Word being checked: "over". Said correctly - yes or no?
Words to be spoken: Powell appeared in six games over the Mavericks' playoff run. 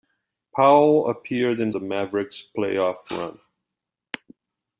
no